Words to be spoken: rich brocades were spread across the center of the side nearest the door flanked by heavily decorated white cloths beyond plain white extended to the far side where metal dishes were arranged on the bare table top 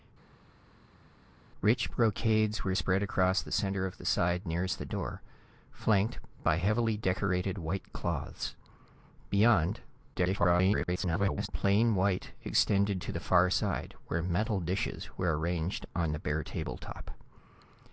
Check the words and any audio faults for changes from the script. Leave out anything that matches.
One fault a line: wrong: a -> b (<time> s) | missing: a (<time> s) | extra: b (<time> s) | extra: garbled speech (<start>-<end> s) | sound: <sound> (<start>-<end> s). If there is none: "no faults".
extra: garbled speech (10.1-11.5 s)